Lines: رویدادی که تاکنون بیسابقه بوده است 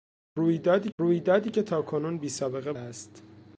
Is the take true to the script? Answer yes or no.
no